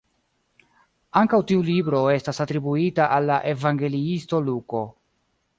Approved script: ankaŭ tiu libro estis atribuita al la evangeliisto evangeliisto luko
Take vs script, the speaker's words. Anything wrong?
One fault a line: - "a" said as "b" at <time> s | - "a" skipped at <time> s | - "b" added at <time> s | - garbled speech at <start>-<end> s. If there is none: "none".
- "estis" said as "estas" at 2.1 s
- "evangeliisto" skipped at 4.4 s